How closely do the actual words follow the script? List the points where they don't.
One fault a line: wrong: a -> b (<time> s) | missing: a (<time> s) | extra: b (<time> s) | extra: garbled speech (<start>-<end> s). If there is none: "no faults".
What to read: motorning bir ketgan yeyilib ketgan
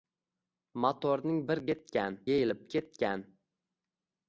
no faults